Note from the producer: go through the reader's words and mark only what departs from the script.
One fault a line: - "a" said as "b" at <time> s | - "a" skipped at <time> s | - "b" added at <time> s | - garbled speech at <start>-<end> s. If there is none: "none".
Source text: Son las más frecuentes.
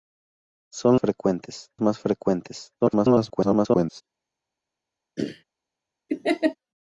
- "las" said as "frecuentes" at 1.0 s
- garbled speech at 2.8-4.0 s